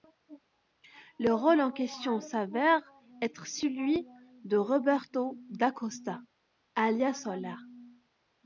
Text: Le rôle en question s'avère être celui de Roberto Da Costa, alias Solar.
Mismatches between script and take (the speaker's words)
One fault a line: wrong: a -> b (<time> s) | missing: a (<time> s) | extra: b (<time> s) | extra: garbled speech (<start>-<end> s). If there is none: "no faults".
no faults